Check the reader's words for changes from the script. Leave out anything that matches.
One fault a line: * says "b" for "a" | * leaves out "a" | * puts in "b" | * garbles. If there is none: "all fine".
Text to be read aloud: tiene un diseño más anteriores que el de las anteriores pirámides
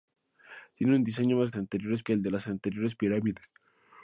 all fine